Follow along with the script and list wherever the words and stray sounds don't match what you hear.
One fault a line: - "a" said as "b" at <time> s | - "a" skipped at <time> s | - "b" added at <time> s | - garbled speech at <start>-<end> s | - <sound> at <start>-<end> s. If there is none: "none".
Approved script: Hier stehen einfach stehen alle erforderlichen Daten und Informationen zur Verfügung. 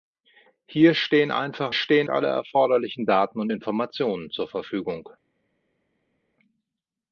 none